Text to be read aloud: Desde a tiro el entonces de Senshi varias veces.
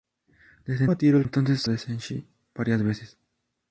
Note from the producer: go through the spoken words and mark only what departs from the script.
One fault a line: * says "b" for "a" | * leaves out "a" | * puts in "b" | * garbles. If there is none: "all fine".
all fine